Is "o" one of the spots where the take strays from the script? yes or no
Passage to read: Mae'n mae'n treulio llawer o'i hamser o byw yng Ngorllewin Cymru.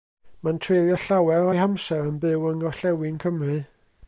yes